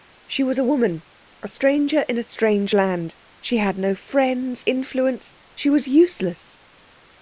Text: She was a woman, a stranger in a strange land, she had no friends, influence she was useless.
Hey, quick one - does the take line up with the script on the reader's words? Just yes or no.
yes